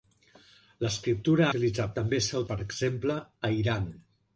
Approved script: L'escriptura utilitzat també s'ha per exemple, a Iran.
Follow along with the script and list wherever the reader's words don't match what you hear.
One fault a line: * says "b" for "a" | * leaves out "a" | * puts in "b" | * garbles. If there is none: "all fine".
all fine